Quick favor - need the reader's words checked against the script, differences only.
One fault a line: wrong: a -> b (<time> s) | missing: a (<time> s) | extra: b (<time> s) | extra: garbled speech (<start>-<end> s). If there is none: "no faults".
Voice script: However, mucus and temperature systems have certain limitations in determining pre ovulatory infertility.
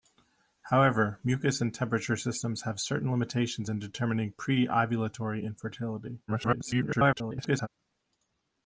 extra: garbled speech (6.3-7.7 s)